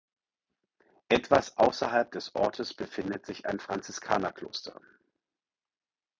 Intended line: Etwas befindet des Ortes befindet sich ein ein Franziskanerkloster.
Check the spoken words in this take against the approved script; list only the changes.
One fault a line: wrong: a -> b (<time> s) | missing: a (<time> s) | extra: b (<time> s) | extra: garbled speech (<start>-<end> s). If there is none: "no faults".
wrong: befindet -> außerhalb (1.6 s)
missing: ein (3.6 s)